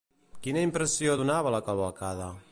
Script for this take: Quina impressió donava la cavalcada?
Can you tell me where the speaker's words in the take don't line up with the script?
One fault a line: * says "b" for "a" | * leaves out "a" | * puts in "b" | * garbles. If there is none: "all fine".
all fine